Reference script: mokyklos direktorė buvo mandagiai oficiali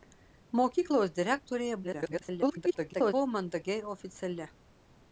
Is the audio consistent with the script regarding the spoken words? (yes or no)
no